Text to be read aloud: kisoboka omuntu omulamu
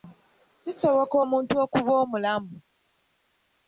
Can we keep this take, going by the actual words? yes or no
no